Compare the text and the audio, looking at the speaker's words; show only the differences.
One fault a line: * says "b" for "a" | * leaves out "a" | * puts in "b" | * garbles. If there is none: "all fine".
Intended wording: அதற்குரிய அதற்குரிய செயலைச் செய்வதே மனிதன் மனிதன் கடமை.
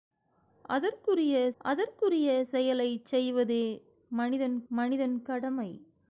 all fine